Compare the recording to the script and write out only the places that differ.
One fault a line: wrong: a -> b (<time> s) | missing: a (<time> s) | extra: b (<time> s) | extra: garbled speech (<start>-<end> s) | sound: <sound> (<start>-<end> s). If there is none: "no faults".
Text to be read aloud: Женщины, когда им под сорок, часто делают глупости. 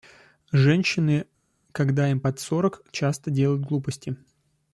no faults